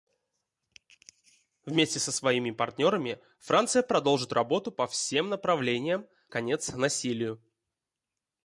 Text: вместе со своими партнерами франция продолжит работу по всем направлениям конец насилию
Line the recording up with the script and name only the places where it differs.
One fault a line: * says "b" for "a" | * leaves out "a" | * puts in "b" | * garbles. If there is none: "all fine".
all fine